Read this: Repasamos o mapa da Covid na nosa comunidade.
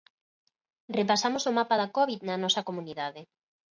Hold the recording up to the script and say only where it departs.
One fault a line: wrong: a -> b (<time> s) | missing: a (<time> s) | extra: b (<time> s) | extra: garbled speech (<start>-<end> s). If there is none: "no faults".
no faults